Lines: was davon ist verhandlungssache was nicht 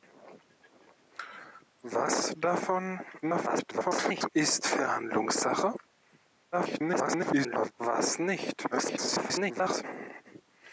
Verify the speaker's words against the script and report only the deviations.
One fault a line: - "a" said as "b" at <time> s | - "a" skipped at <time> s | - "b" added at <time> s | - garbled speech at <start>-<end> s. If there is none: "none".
- garbled speech at 3.2-4.3 s
- garbled speech at 6.5-7.7 s
- garbled speech at 8.7-9.8 s